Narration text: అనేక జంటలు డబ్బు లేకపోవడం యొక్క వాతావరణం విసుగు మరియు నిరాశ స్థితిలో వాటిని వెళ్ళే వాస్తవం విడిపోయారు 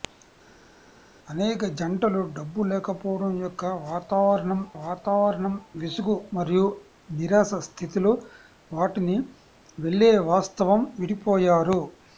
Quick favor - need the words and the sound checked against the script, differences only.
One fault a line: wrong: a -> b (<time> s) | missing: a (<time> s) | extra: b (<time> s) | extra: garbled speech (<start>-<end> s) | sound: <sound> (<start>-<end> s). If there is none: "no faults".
extra: వాతావరణం (4.8 s)